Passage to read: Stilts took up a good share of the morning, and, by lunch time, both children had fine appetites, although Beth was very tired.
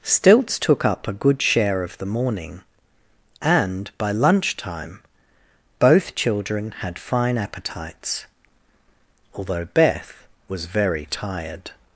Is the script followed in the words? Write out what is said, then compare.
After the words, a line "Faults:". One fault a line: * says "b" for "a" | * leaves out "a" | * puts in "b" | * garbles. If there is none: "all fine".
Stilts took up a good share of the morning, and, by lunch time, both children had fine appetites, although Beth was very tired.
Faults:
all fine